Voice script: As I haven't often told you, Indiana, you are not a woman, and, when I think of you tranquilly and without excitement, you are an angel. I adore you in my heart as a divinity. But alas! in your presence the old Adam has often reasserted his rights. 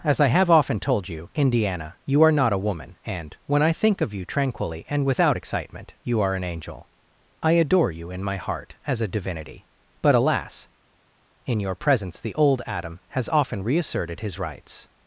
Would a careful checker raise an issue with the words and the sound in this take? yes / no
yes